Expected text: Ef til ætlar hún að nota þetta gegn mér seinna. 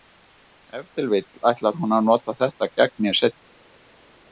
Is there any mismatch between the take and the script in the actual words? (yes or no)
yes